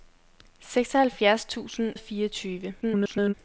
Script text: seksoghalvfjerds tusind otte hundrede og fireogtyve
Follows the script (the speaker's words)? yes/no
no